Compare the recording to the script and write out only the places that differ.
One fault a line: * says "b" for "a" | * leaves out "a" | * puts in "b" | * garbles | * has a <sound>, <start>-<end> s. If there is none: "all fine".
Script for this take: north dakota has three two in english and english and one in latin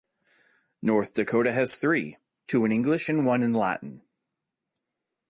* leaves out "english and"